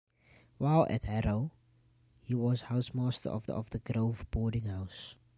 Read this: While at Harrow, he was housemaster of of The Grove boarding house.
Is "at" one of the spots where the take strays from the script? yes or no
no